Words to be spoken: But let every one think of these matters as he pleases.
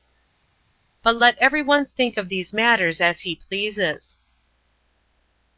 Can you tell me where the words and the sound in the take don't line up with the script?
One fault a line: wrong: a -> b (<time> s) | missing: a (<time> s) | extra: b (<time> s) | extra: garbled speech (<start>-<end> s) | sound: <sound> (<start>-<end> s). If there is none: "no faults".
no faults